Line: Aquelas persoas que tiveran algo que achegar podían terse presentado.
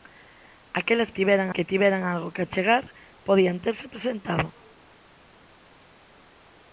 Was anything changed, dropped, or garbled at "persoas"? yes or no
yes